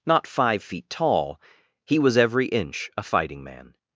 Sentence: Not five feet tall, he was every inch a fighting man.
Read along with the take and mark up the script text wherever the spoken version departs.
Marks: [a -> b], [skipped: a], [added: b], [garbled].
Not five feet tall, he was every inch a fighting man.